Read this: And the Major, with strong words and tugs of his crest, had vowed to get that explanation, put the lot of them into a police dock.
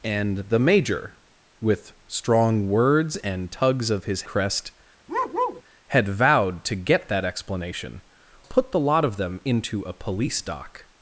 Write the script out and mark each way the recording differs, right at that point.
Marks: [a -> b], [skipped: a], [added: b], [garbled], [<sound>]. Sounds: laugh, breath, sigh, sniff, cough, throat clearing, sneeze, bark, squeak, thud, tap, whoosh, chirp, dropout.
And the Major, with strong words and tugs of his crest, [bark] had vowed to get that explanation, put the lot of them into a police dock.